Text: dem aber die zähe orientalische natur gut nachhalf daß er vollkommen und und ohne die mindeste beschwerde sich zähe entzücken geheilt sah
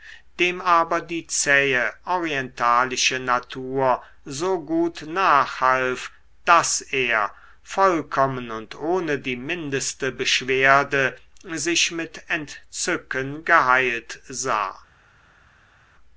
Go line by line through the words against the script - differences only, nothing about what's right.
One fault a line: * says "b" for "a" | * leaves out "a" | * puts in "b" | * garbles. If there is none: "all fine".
* puts in "so"
* leaves out "und"
* says "mit" for "zähe"